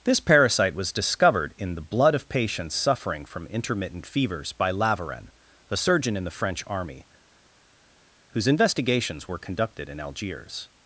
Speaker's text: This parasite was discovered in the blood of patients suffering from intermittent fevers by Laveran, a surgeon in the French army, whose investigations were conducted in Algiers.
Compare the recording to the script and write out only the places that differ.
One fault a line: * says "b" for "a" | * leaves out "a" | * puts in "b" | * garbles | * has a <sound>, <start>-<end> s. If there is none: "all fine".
all fine